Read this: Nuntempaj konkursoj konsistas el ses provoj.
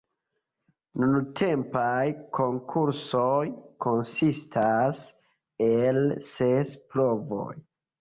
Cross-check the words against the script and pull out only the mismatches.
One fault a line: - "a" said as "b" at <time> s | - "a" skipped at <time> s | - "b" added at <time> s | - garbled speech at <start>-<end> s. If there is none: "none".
none